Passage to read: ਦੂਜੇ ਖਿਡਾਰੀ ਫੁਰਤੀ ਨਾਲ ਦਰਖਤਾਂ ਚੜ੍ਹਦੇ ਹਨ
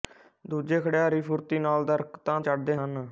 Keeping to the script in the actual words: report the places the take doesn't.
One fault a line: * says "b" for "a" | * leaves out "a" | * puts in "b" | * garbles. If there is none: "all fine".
all fine